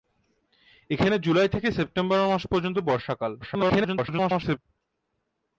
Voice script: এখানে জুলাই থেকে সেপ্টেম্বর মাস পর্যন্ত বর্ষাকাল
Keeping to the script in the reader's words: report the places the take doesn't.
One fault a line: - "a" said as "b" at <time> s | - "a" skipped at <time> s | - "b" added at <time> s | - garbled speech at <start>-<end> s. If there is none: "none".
- garbled speech at 3.4-4.6 s